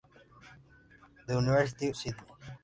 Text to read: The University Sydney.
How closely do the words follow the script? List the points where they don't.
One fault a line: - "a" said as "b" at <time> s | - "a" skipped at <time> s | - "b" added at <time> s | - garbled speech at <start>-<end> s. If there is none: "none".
none